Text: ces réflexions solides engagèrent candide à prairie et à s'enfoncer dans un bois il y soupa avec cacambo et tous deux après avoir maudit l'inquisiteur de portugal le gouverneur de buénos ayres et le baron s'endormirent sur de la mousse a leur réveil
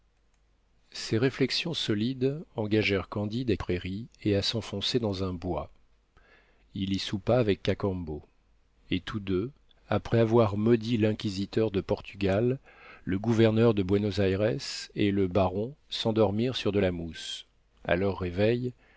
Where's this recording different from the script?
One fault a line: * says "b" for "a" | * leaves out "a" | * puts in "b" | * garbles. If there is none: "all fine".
all fine